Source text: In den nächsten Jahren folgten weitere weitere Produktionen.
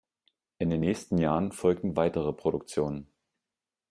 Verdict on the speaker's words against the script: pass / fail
fail